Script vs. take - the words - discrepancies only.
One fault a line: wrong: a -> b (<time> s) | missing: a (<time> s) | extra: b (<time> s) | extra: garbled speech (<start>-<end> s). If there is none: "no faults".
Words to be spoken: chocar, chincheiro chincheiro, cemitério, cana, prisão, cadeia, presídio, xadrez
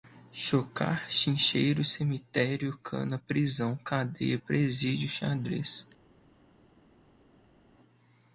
missing: chincheiro (1.9 s)